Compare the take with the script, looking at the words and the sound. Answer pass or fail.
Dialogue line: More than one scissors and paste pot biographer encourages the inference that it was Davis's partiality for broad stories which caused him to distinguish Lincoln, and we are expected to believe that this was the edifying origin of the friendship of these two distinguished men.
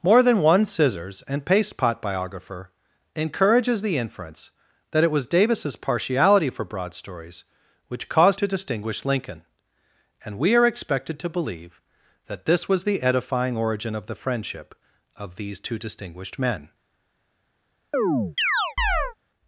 fail